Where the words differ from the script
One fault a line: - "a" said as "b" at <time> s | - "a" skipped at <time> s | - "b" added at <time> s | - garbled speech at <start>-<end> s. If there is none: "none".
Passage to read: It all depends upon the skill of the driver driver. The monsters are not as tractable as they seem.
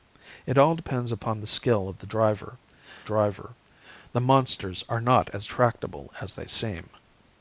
none